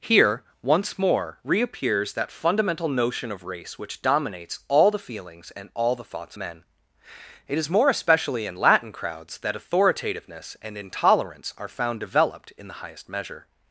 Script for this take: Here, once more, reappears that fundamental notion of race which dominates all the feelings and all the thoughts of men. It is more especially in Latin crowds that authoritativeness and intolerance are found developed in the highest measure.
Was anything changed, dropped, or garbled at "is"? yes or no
no